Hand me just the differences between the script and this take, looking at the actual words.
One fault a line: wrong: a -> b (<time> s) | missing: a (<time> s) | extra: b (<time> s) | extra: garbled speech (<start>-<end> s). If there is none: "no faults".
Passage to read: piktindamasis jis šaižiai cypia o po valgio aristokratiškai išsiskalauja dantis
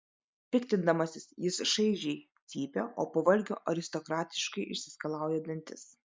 no faults